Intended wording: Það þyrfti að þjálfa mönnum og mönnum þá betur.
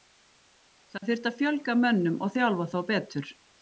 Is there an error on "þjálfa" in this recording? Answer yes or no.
yes